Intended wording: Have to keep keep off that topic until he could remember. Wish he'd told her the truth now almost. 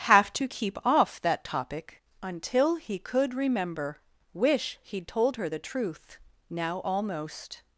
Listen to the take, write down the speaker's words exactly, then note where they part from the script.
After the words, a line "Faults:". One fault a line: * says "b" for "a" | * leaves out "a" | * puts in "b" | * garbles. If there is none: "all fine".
Have to keep off that topic until he could remember. Wish he'd told her the truth now almost.
Faults:
* leaves out "keep"